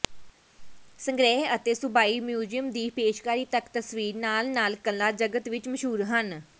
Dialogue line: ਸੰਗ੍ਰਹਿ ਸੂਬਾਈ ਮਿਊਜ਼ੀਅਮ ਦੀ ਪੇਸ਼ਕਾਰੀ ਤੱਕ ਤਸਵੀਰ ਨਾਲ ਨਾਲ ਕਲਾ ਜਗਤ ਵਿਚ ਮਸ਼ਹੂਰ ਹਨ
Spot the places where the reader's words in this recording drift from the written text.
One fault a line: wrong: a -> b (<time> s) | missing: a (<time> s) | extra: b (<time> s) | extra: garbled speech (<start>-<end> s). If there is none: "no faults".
extra: ਅਤੇ (1.6 s)